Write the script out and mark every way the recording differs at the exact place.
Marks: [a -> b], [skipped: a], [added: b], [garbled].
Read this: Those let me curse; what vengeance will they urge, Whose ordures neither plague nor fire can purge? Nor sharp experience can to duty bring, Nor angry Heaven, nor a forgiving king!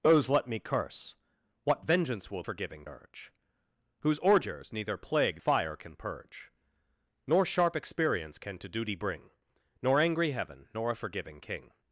Those let me curse; what vengeance will [they -> forgiving] urge, Whose ordures neither plague [skipped: nor] fire can purge? Nor sharp experience can to duty bring, Nor angry Heaven, nor a forgiving king!